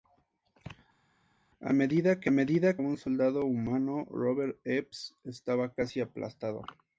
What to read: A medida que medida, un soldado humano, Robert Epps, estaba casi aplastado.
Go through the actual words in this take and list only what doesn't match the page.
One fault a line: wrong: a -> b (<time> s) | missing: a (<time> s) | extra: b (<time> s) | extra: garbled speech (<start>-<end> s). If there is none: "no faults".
no faults